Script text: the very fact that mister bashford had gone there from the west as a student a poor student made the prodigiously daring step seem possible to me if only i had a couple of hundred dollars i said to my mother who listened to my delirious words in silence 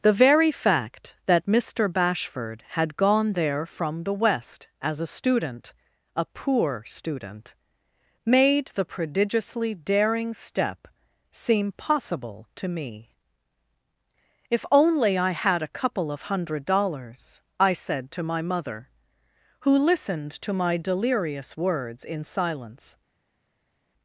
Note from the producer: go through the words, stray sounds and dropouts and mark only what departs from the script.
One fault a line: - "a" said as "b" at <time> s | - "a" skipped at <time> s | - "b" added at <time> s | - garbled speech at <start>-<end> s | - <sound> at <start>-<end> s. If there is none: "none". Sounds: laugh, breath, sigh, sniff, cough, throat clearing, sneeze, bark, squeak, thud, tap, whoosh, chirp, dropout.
none